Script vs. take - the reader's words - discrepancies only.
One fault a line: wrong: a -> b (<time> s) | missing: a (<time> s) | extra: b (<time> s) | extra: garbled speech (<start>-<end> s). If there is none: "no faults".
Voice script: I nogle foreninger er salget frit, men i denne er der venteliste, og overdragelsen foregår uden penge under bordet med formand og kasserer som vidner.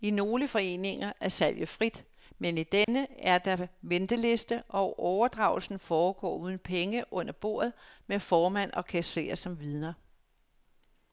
no faults